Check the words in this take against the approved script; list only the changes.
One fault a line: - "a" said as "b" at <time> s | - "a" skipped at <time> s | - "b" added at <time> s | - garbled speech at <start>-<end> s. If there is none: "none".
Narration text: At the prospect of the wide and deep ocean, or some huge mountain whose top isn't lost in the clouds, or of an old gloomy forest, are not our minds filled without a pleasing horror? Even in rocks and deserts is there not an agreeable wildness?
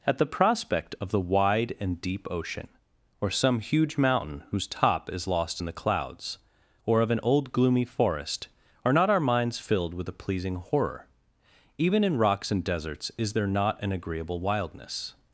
- "isn't" said as "is" at 5.1 s
- "without" said as "with" at 9.9 s